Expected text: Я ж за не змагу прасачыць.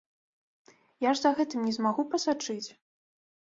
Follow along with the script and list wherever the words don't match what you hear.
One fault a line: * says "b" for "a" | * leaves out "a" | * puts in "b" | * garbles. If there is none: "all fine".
* puts in "гэтым"